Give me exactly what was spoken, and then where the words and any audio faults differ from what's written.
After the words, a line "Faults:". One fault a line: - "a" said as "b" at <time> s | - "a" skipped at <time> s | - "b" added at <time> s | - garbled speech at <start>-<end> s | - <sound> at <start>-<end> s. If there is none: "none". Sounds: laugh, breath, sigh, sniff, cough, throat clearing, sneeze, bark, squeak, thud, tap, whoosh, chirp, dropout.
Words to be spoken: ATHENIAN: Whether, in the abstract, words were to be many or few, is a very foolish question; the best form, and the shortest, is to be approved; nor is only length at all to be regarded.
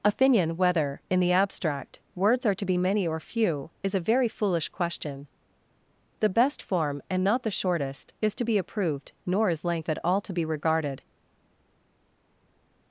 ATHENIAN: Whether, in the abstract, words are to be many or few, is a very foolish question; the best form, and not the shortest, is to be approved; nor is length at all to be regarded.
Faults:
- "were" said as "are" at 2.4 s
- "not" added at 7.2 s
- "only" skipped at 9.6 s